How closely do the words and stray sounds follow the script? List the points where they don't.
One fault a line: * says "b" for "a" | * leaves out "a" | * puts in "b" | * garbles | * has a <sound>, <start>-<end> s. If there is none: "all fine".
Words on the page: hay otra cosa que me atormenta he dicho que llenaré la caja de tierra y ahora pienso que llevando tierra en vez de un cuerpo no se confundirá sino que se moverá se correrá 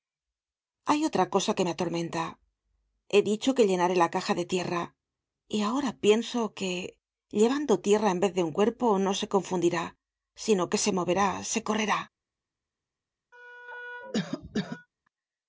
* has a cough, 13.3-14.9 s